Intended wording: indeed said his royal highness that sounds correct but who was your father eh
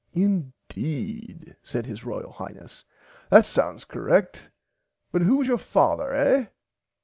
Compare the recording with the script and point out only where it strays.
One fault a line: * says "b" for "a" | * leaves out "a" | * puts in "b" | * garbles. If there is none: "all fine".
all fine